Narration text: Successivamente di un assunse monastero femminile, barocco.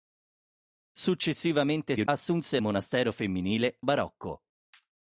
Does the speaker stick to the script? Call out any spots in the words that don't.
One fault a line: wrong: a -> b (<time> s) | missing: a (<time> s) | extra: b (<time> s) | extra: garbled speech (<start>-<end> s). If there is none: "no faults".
no faults